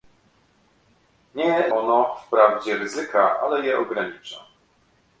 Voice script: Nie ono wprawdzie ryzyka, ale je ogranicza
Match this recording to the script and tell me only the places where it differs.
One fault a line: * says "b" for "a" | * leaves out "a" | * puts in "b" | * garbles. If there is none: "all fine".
all fine